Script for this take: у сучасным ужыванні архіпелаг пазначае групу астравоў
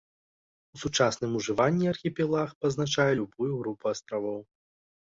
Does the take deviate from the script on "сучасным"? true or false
false